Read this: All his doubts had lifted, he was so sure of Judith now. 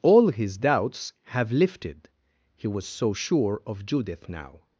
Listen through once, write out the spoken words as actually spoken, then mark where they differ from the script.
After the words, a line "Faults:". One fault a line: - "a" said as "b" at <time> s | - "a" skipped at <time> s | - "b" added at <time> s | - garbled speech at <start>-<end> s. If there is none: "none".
All his doubts have lifted, he was so sure of Judith now.
Faults:
- "had" said as "have" at 1.3 s